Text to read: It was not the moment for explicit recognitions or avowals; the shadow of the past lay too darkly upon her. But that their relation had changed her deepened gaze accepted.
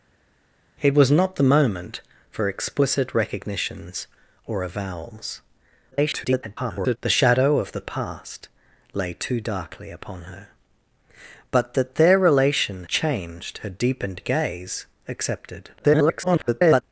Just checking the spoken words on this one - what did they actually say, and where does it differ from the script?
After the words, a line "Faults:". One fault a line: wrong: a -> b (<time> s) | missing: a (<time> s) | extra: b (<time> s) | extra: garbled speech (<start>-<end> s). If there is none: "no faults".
It was not the moment for explicit recognitions or avowals; [garbled] the shadow of the past lay too darkly upon her. But that their relation changed her deepened gaze accepted. [garbled]
Faults:
extra: garbled speech (5.9-7.0 s)
missing: had (12.8 s)
extra: garbled speech (15.8-16.8 s)